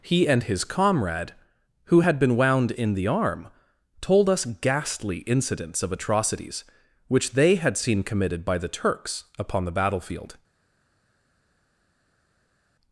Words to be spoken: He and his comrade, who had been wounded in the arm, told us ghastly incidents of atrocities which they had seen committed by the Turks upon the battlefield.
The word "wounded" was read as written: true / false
false